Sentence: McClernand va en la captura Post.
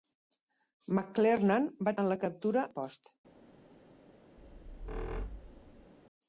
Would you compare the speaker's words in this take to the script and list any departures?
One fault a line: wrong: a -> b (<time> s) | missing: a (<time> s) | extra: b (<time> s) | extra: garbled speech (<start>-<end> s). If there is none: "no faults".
no faults